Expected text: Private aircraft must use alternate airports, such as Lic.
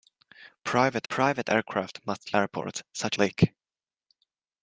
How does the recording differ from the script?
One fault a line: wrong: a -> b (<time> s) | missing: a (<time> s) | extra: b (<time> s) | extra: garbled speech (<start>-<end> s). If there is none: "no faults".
extra: private (1.1 s)
missing: use alternate (2.3 s)
missing: as (3.2 s)